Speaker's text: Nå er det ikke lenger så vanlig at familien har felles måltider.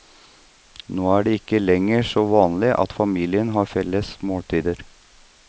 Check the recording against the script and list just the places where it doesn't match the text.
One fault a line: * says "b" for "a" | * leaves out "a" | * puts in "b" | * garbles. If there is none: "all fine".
all fine